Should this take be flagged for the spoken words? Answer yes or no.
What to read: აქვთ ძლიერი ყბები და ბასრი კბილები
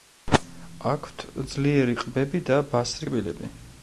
no